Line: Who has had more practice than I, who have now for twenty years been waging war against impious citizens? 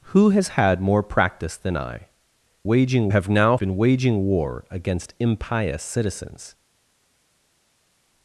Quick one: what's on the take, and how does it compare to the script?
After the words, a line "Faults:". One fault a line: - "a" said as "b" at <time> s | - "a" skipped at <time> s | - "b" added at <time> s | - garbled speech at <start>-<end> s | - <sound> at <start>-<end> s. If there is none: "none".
Who has had more practice than I, waging have now been waging war against impious citizens?
Faults:
- "who" said as "waging" at 2.6 s
- "for twenty years" skipped at 3.6 s